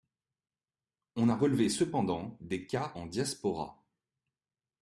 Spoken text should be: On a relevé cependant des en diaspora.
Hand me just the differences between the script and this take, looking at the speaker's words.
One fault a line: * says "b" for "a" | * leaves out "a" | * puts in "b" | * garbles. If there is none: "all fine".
* puts in "cas"